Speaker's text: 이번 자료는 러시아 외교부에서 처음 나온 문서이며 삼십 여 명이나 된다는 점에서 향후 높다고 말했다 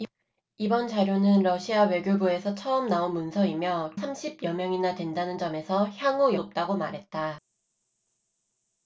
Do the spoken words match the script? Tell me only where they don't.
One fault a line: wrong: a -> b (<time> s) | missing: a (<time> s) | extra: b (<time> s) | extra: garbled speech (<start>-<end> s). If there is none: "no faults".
no faults